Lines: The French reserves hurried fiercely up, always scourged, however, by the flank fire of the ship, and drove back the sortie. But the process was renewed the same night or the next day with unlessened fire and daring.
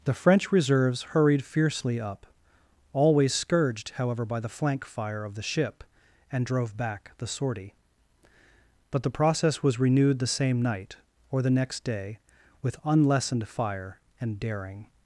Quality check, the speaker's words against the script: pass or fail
pass